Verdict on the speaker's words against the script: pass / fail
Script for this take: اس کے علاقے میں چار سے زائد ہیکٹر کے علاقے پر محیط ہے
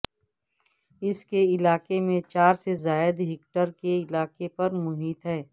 pass